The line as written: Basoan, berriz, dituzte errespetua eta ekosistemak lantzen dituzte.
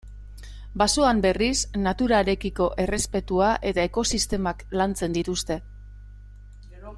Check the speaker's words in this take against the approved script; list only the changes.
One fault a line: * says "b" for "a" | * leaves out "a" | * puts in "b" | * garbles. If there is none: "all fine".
* says "naturarekiko" for "dituzte"